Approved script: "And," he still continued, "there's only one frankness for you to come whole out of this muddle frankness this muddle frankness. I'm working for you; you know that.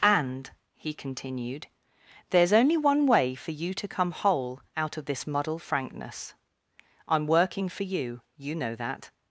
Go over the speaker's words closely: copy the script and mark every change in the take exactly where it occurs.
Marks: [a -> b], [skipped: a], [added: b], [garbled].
"And," he [skipped: still] continued, "there's only one [frankness -> way] for you to come whole out of this muddle frankness [skipped: this muddle frankness.] I'm working for you; you know that.